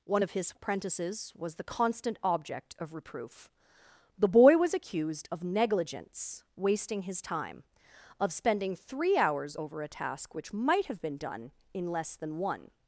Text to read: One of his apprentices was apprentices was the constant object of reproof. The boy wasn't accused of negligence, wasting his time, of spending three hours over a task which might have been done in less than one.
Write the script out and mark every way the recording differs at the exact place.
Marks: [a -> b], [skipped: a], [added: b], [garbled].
One of his apprentices was [skipped: apprentices was] the constant object of reproof. The boy [wasn't -> was] accused of negligence, wasting his time, of spending three hours over a task which might have been done in less than one.